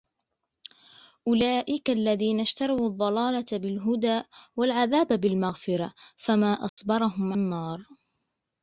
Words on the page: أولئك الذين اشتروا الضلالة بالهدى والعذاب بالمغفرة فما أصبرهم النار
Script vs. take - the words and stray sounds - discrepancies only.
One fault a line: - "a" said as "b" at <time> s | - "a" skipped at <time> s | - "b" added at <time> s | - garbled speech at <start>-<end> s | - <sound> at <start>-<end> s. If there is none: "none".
- dropout at 6.7-6.8 s